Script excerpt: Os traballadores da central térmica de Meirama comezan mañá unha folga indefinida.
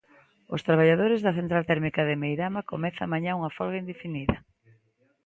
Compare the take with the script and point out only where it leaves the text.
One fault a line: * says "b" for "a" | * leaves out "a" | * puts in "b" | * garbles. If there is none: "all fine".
all fine